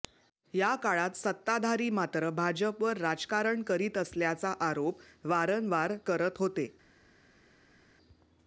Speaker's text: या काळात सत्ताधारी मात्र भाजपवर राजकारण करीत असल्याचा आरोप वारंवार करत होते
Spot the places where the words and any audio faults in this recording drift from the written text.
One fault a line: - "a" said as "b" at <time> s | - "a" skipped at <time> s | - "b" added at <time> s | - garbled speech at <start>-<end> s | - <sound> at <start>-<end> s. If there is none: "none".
none